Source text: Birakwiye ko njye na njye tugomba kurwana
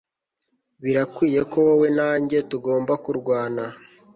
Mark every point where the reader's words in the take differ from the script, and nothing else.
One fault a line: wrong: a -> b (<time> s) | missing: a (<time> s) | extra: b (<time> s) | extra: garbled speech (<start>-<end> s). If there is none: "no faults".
wrong: njye -> wowe (1.7 s)